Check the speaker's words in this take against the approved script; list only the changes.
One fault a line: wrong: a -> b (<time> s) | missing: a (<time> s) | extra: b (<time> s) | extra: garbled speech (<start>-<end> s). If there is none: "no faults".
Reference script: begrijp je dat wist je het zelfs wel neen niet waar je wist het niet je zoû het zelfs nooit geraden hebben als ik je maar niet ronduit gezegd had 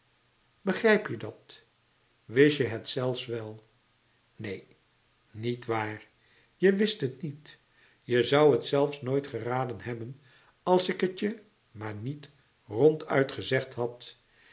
extra: het (11.0 s)